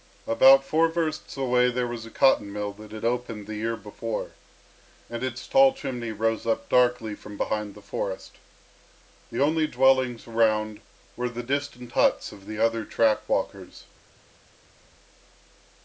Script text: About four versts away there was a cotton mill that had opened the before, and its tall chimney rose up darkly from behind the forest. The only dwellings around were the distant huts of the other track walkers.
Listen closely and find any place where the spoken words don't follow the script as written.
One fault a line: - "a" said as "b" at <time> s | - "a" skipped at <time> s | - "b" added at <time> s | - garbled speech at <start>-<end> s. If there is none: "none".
- "year" added at 3.6 s